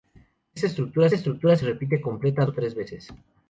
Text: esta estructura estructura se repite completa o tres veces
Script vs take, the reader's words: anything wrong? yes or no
no